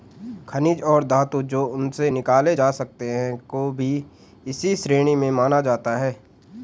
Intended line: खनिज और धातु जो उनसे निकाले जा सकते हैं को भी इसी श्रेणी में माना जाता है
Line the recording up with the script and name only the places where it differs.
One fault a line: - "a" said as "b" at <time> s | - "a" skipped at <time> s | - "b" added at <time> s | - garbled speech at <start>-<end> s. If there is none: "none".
none